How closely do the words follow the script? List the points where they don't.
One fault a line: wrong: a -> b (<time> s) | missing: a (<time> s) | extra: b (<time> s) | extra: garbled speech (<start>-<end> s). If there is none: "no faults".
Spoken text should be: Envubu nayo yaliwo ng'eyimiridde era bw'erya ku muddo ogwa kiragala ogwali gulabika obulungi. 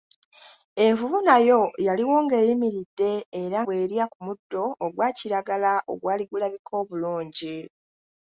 no faults